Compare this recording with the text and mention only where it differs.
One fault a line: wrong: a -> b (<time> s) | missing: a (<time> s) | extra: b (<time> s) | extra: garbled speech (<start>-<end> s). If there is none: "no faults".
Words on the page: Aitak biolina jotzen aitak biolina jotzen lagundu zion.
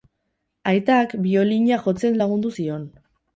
missing: aitak biolina jotzen (2.2 s)